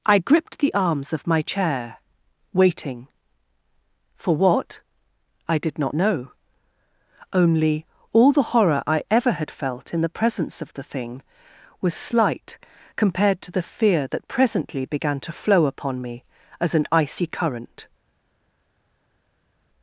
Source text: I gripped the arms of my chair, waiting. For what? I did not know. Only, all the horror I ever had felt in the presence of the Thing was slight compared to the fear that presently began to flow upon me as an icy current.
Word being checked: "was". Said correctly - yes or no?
yes